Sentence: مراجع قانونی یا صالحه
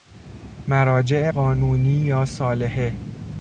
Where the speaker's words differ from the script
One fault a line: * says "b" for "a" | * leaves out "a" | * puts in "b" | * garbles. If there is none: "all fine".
all fine